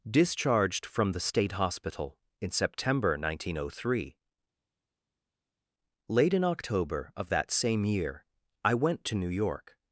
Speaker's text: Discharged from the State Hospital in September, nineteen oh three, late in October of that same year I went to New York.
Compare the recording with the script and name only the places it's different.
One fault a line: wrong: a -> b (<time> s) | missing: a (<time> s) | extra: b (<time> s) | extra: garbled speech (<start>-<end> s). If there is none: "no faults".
no faults